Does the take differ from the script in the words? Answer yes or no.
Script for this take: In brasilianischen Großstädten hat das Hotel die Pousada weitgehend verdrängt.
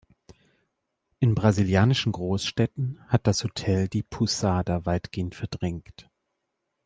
no